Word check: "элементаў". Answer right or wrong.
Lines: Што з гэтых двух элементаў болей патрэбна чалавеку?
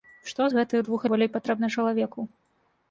wrong